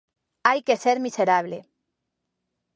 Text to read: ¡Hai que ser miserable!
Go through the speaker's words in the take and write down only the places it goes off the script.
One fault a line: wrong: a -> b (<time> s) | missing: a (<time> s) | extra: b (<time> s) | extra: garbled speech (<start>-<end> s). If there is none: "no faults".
no faults